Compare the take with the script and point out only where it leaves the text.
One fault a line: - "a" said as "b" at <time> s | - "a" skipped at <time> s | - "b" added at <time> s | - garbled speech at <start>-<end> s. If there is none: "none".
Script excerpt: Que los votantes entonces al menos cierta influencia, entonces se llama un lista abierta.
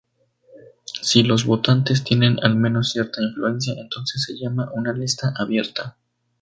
- "Que" said as "Si" at 1.0 s
- "entonces" said as "tienen" at 2.0 s
- "un" said as "una" at 4.7 s